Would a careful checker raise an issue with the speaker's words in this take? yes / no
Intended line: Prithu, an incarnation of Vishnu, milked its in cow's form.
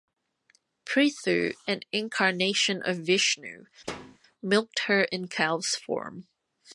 yes